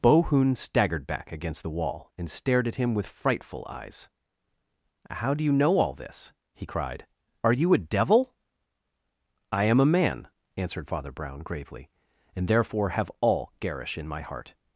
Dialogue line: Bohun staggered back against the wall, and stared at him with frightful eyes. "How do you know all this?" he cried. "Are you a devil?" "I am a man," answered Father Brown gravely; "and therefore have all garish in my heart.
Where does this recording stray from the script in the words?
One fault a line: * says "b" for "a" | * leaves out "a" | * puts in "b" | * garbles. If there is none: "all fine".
all fine